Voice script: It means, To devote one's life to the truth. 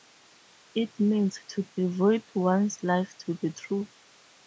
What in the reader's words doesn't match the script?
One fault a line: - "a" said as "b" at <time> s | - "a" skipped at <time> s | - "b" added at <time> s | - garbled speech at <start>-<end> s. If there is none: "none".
none